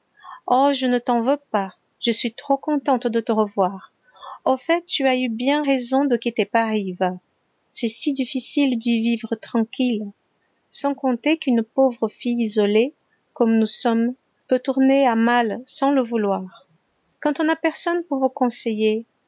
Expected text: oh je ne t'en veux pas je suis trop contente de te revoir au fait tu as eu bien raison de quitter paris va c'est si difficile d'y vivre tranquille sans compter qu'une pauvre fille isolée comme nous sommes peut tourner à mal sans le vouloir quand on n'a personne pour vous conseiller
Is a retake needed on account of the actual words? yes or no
no